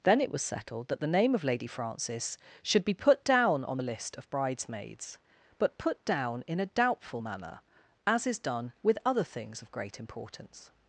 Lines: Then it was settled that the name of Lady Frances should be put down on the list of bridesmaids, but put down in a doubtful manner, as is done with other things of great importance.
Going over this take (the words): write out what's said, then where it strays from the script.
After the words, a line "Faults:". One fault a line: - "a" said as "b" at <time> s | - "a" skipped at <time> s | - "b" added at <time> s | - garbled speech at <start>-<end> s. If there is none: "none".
Then it was settled that the name of Lady Frances should be put down on the list of bridesmaids, but put down in a doubtful manner, as is done with other things of great importance.
Faults:
none